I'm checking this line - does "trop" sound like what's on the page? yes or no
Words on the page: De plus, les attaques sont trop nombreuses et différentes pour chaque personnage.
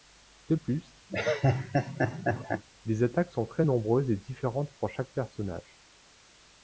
no